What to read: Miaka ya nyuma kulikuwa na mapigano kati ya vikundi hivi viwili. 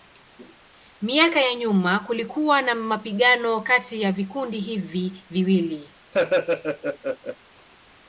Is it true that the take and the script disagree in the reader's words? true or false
false